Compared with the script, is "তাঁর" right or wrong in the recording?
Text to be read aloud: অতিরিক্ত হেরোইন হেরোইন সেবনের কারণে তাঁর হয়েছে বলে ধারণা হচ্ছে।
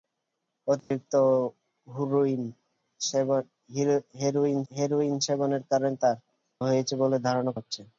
right